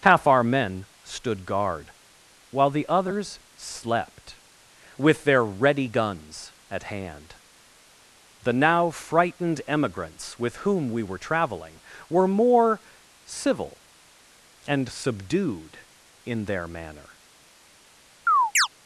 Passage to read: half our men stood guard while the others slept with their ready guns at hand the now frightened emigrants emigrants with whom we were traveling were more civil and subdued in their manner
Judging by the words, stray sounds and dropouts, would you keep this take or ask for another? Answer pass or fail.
fail